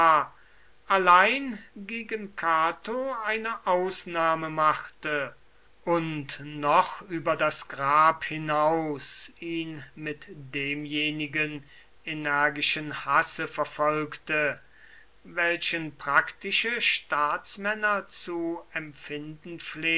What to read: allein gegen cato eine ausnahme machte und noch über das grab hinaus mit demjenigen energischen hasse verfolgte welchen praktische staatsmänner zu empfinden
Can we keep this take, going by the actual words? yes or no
no